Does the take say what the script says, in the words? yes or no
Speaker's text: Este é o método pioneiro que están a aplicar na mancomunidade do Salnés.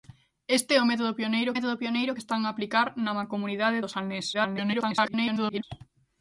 no